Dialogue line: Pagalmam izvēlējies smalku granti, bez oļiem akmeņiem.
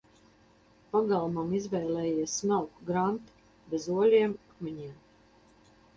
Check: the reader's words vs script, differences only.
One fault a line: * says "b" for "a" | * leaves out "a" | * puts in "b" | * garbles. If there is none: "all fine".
all fine